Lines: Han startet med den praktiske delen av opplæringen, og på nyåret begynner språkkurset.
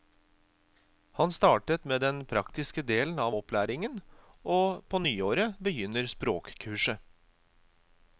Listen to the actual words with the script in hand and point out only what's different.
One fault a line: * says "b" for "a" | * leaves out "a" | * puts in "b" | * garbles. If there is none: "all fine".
all fine